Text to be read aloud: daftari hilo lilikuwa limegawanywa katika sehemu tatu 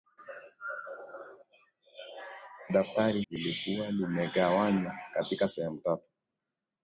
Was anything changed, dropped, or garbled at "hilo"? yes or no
yes